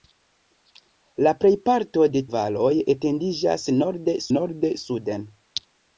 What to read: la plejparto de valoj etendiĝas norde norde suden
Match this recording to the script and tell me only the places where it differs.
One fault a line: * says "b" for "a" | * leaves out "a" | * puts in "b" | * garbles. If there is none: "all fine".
all fine